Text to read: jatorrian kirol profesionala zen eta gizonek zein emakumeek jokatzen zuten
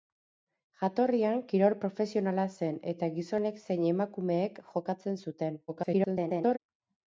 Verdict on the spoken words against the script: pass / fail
fail